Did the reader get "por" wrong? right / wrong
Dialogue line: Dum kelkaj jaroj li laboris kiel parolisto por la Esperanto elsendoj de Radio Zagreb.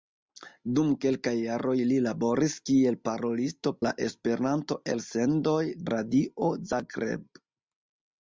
wrong